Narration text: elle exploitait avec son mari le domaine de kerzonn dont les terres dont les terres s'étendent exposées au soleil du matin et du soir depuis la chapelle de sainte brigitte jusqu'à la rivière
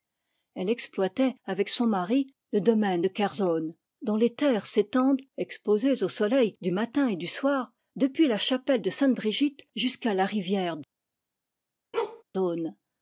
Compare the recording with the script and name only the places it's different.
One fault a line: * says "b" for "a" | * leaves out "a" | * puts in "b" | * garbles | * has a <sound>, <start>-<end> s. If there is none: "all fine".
* leaves out "dont les terres"
* has a bark, 11.9-12.2 s